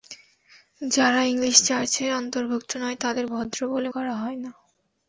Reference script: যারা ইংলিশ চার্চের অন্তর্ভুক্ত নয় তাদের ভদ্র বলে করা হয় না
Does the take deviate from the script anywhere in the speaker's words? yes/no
no